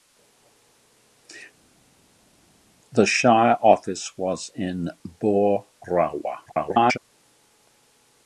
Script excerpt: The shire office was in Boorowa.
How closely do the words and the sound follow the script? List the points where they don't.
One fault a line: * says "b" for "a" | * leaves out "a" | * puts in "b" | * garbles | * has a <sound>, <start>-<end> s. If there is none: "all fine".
* garbles